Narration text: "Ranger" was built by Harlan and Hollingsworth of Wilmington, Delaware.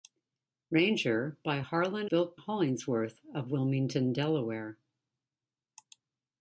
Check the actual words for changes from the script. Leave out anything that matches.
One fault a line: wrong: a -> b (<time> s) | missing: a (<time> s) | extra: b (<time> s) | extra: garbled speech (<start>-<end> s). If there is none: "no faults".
missing: was built (1.4 s)
wrong: and -> built (2.0 s)